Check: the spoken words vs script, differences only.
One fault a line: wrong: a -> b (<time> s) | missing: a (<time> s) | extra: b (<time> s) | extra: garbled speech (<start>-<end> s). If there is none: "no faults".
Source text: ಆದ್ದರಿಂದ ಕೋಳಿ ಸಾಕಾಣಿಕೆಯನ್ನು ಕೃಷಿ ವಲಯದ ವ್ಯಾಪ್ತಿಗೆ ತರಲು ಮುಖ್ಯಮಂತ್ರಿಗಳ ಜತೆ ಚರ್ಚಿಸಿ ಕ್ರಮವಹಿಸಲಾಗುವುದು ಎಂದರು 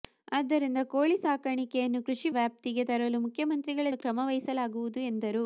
missing: ವಲಯದ (2.3 s)
missing: ಜತೆ ಚರ್ಚಿಸಿ (3.9 s)